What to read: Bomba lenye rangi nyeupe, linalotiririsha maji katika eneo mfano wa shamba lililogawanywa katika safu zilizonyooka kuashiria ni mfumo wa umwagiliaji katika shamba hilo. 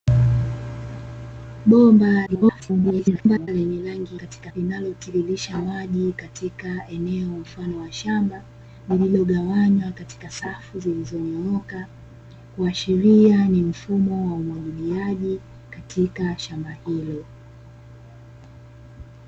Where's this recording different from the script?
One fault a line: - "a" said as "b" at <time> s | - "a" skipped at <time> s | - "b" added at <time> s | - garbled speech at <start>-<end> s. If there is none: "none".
- garbled speech at 2.3-3.5 s
- "nyeupe" said as "katika" at 4.1 s